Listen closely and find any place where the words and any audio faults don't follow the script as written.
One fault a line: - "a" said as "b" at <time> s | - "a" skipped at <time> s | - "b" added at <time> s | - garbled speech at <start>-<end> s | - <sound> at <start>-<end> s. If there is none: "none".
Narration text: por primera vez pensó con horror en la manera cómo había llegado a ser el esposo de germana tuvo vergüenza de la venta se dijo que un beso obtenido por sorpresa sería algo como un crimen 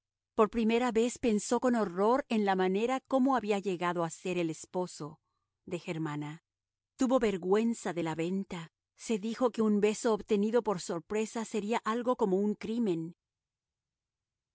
none